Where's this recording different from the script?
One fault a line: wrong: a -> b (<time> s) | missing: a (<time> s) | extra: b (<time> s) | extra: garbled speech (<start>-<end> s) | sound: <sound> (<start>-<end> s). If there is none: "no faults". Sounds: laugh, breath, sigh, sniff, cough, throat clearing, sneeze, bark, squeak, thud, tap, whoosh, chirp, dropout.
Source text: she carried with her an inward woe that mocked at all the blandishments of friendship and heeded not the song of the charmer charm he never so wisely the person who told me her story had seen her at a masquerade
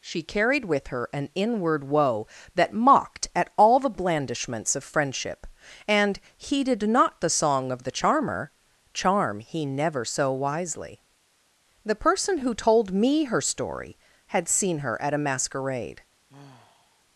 sound: sigh (16.3-17.0 s)